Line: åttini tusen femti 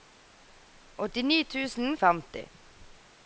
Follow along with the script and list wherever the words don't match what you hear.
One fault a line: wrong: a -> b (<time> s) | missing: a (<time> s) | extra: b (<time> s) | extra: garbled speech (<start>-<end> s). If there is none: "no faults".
no faults